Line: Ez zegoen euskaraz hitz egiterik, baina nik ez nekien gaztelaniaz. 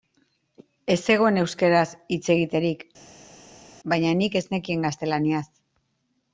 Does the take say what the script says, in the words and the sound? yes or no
yes